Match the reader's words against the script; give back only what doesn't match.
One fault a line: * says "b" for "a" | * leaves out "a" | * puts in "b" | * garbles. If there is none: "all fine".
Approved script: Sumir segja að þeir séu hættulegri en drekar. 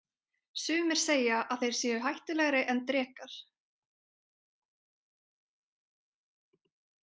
all fine